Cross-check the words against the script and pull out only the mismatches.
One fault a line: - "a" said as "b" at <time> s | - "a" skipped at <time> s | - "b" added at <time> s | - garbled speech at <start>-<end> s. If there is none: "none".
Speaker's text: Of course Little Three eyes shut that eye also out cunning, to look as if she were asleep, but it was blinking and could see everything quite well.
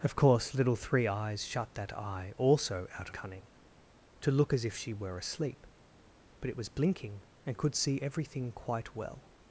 none